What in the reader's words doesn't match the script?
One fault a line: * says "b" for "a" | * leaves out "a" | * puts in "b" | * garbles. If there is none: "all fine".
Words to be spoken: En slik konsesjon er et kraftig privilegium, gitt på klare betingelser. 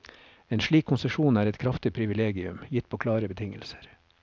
all fine